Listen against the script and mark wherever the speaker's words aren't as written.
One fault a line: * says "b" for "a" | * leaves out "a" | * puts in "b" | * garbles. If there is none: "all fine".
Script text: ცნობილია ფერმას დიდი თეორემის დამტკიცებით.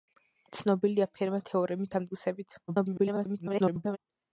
* leaves out "დიდი"
* garbles